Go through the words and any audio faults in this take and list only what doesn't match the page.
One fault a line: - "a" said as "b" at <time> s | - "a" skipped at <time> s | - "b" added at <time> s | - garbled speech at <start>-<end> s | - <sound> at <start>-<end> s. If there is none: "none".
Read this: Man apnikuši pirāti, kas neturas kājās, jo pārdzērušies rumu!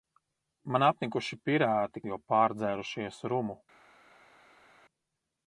- "kas neturas kājās" skipped at 2.0 s